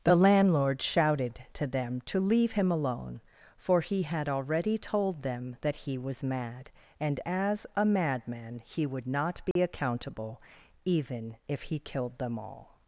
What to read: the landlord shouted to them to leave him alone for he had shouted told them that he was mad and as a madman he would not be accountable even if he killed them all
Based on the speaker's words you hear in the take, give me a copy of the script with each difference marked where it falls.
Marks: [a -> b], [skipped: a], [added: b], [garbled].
the landlord shouted to them to leave him alone for he had [shouted -> already] told them that he was mad and as a madman he would not be accountable even if he killed them all